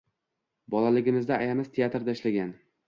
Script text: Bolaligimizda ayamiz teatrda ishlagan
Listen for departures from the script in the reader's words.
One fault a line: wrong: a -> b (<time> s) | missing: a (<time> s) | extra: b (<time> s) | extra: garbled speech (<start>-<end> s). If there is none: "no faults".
no faults